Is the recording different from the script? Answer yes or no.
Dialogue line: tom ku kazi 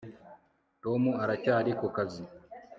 yes